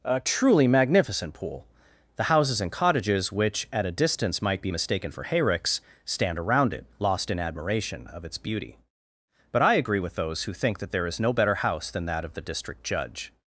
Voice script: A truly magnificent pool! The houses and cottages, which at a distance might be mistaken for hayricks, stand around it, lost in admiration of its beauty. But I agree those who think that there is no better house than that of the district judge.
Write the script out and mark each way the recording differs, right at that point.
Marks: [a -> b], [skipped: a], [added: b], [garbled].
A truly magnificent pool! The houses and cottages, which at a distance might be mistaken for hayricks, stand around it, lost in admiration of its beauty. But I agree [added: with] those who think that there is no better house than that of the district judge.